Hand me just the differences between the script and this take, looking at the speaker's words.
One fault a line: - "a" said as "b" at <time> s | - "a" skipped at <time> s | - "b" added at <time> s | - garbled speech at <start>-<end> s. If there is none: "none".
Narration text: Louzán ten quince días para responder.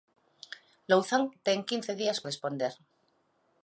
- "para" skipped at 2.2 s